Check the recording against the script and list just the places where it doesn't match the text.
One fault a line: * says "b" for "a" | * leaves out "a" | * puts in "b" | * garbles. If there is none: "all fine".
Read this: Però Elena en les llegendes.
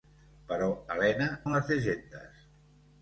all fine